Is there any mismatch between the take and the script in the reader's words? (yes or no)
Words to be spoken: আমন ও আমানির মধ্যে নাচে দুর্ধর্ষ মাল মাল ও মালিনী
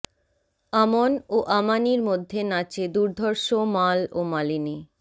yes